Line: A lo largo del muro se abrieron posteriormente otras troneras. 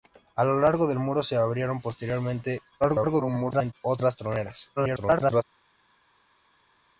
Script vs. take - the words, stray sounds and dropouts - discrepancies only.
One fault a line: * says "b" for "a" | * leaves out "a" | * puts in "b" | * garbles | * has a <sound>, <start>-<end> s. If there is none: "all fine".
* garbles
* garbles